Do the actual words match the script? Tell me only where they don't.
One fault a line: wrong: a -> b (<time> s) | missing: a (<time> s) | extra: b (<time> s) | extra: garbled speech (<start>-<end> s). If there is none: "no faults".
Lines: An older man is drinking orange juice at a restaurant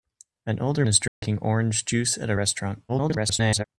missing: man (0.8 s)
extra: garbled speech (2.9-3.6 s)